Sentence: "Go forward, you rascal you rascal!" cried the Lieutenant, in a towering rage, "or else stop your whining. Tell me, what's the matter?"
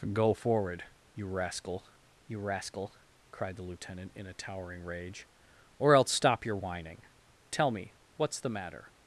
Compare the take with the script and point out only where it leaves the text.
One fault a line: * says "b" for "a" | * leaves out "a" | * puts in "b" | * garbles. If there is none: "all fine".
all fine